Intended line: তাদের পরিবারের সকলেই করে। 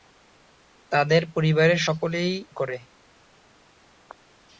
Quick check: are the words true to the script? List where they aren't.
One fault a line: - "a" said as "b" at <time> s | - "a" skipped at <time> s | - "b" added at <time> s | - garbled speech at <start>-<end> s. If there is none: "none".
none